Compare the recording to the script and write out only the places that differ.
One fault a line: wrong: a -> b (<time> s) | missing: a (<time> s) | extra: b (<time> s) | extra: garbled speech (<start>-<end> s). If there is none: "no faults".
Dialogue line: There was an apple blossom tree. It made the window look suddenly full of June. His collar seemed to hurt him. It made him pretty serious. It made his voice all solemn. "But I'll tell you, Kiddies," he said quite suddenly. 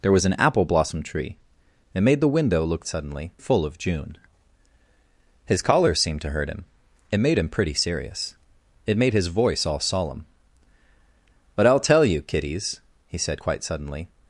no faults